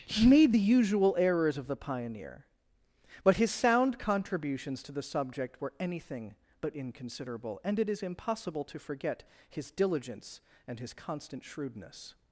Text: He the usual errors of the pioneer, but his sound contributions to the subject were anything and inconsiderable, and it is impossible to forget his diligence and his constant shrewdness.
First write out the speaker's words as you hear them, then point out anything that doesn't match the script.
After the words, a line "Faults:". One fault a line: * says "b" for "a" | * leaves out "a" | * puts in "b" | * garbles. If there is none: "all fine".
He made the usual errors of the pioneer, but his sound contributions to the subject were anything but inconsiderable, and it is impossible to forget his diligence and his constant shrewdness.
Faults:
* puts in "made"
* says "but" for "and"